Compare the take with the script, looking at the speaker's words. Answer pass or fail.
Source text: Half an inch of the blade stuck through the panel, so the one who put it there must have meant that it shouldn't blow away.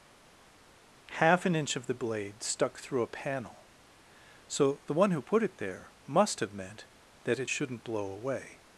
fail